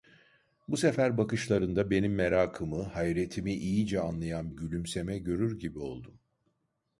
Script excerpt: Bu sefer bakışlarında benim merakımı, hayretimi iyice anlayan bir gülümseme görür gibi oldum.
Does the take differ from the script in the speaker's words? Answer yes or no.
yes